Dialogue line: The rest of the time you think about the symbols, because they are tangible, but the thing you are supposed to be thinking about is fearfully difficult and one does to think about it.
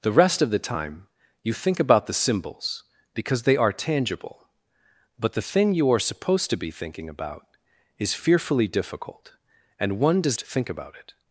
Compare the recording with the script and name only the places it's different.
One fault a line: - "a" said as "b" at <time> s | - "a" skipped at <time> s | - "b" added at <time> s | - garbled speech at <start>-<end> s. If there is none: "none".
none